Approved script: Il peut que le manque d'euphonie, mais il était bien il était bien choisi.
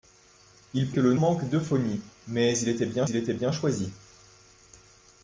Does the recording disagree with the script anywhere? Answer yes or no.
no